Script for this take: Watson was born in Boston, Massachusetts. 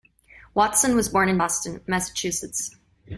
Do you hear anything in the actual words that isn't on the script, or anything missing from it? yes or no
no